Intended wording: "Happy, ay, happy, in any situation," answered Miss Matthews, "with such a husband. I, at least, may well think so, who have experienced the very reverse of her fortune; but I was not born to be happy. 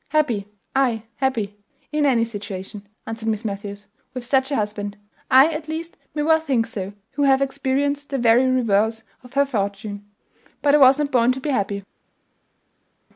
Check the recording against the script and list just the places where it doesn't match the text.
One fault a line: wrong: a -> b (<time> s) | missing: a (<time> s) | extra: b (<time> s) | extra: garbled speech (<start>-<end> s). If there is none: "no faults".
no faults